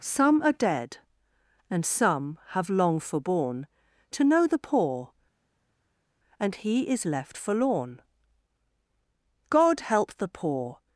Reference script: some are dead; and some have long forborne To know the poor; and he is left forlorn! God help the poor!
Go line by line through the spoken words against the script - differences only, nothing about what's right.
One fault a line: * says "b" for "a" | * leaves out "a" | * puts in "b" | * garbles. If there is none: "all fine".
all fine